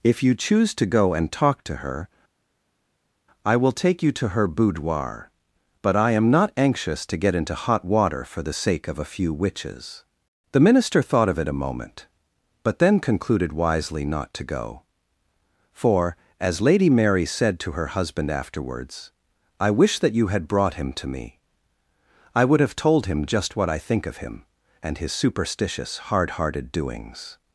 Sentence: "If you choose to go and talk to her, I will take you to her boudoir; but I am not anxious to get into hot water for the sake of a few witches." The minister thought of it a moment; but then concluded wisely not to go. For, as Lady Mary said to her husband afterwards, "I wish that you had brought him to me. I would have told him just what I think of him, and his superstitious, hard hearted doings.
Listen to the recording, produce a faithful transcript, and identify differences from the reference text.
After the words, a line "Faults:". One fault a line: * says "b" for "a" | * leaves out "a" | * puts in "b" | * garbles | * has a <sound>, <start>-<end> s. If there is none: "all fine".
"If you choose to go and talk to her, I will take you to her boudoir; but I am not anxious to get into hot water for the sake of a few witches." The minister thought of it a moment; but then concluded wisely not to go. For, as Lady Mary said to her husband afterwards, "I wish that you had brought him to me. I would have told him just what I think of him, and his superstitious, hard hearted doings.
Faults:
all fine